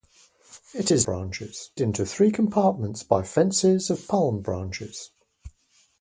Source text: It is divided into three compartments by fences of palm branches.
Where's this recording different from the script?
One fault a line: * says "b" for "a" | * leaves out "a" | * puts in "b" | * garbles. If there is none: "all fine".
* says "branches" for "divided"